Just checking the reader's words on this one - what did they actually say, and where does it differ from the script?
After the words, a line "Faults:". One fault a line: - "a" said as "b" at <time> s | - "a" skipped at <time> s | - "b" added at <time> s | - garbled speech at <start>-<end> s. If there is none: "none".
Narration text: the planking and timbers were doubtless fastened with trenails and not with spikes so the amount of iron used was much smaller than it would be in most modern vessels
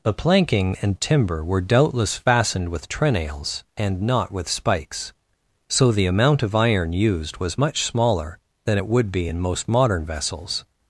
the planking and timber were doubtless fastened with trenails and not with spikes so the amount of iron used was much smaller than it would be in most modern vessels
Faults:
- "timbers" said as "timber" at 1.0 s